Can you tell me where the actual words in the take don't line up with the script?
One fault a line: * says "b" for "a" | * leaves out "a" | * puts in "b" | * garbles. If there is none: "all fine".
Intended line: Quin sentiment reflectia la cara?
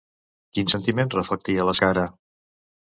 all fine